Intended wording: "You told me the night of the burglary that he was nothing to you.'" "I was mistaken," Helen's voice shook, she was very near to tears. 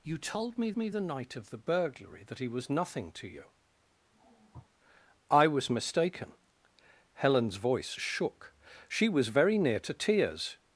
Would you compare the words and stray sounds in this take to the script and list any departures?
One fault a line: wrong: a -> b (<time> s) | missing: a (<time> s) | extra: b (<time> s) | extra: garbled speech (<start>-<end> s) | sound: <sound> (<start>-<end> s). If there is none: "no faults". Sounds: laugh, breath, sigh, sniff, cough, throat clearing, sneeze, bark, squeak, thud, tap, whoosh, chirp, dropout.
extra: me (0.8 s)
sound: sniff (4.1-4.7 s)